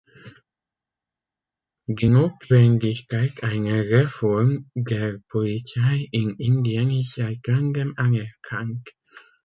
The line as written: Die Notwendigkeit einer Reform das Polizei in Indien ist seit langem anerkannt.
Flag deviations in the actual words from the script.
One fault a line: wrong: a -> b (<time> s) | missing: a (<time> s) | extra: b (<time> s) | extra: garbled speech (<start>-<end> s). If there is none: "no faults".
wrong: das -> der (4.8 s)